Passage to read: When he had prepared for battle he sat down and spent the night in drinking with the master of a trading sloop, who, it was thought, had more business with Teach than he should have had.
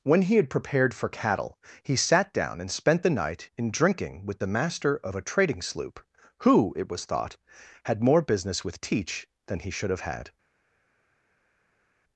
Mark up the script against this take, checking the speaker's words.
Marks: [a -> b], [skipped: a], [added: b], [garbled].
When he had prepared for [battle -> cattle] he sat down and spent the night in drinking with the master of a trading sloop, who, it was thought, had more business with Teach than he should have had.